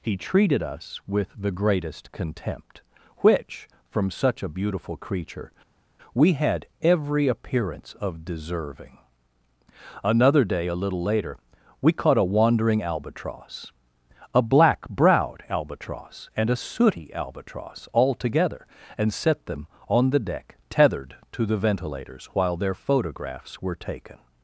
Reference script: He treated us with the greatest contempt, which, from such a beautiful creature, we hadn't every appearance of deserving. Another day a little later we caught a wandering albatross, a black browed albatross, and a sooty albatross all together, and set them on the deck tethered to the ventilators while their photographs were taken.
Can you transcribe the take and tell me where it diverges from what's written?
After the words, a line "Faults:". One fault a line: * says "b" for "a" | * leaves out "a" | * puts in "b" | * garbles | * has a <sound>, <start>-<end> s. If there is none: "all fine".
He treated us with the greatest contempt, which, from such a beautiful creature, we had every appearance of deserving. Another day a little later we caught a wandering albatross, a black browed albatross, and a sooty albatross all together, and set them on the deck tethered to the ventilators while their photographs were taken.
Faults:
* says "had" for "hadn't"